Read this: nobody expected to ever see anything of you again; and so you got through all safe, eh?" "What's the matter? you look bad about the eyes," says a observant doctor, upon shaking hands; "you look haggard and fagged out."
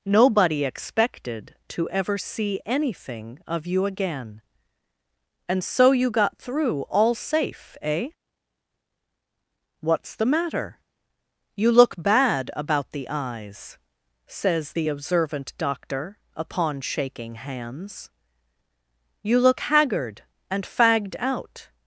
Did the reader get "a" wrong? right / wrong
wrong